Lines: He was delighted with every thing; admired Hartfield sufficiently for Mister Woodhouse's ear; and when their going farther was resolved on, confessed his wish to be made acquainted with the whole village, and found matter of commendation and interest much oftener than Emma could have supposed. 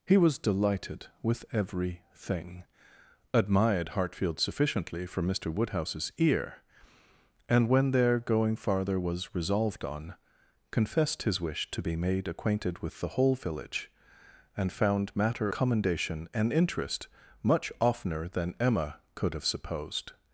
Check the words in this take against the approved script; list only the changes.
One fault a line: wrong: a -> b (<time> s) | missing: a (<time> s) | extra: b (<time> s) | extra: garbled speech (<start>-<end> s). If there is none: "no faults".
missing: of (15.5 s)